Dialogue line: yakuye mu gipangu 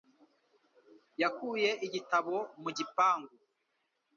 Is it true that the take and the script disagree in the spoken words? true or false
true